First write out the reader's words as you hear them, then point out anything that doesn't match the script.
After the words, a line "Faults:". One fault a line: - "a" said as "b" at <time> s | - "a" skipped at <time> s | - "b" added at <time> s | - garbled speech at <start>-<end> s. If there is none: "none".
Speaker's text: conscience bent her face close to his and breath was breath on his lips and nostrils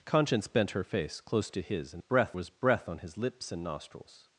conscience bent her face close to his and breath was breath on his lips and nostrils
Faults:
none